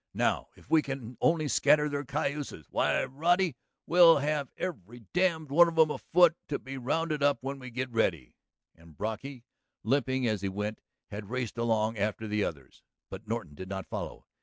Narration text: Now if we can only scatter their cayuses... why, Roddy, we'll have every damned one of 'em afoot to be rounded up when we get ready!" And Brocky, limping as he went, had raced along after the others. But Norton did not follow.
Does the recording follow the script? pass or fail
pass